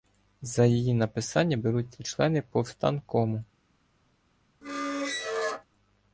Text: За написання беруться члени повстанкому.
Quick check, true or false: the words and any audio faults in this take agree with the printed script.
false